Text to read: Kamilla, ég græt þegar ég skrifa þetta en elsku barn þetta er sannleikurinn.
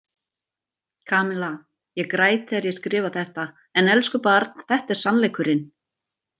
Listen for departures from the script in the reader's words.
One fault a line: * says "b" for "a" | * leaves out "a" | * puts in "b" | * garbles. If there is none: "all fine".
all fine